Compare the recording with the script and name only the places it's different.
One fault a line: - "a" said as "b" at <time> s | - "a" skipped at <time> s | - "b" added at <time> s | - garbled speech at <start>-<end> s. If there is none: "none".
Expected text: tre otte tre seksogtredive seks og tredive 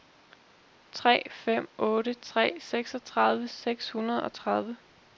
- "fem" added at 1.3 s
- "hundrede" added at 3.9 s